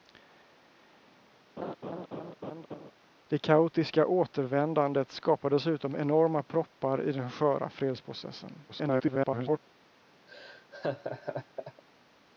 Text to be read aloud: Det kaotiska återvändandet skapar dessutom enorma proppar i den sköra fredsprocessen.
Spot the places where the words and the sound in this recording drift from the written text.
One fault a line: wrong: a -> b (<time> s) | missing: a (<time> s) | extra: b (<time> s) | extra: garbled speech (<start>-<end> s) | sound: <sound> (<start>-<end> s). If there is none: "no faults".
sound: laugh (1.6-2.9 s)
extra: garbled speech (8.7-9.6 s)
sound: laugh (10.3-11.8 s)